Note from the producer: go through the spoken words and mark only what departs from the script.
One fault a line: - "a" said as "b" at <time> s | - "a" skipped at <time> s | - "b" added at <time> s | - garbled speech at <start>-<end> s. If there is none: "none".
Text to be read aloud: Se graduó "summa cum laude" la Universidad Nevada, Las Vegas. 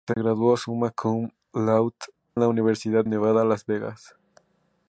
none